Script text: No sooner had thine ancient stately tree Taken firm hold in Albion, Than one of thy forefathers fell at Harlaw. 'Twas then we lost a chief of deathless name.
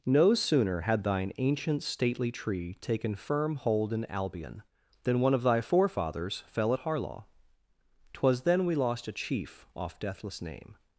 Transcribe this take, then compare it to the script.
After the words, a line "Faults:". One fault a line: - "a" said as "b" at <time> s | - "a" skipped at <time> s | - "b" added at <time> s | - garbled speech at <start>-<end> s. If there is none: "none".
No sooner had thine ancient stately tree Taken firm hold in Albion, Than one of thy forefathers fell at Harlaw. 'Twas then we lost a chief off deathless name.
Faults:
- "of" said as "off" at 9.8 s